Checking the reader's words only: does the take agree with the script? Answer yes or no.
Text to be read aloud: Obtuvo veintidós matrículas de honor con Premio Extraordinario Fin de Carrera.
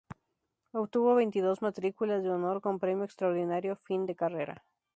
yes